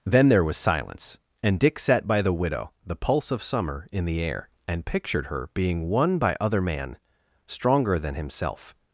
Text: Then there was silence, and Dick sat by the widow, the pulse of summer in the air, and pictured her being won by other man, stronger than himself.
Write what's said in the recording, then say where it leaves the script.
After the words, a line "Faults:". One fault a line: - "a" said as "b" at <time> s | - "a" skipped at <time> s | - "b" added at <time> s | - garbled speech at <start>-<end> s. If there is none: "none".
Then there was silence, and Dick sat by the widow, the pulse of summer in the air, and pictured her being won by other man, stronger than himself.
Faults:
none